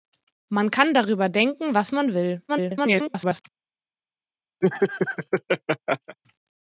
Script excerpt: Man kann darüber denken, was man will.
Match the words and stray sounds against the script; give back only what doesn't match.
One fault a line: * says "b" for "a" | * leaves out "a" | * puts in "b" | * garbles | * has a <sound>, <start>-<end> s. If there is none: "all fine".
* garbles
* has a laugh, 4.6-6.2 s